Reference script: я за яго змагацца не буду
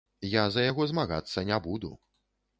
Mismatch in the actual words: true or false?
false